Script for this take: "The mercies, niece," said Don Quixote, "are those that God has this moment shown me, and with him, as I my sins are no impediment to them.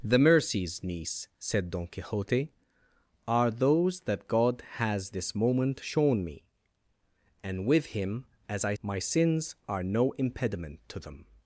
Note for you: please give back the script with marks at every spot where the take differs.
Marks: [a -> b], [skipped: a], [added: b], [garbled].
"The mercies, niece," said Don Quixote, "are those that God has this moment shown me, and with him, as I my sins are no impediment to them.